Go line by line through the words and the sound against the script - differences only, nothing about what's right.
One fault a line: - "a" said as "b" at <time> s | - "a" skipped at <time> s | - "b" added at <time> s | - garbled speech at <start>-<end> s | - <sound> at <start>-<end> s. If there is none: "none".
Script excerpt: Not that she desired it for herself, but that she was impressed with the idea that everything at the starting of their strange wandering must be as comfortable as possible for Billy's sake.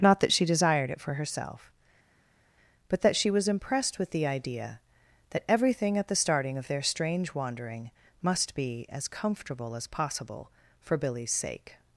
none